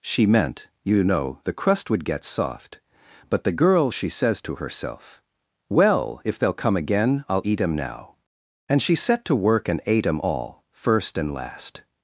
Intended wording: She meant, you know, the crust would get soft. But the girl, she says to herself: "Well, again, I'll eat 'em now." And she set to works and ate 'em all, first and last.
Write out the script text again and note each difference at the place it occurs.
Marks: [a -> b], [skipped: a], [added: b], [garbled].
She meant, you know, the crust would get soft. But the girl, she says to herself: "Well, [added: if they'll come] again, I'll eat 'em now." And she set to [works -> work] and ate 'em all, first and last.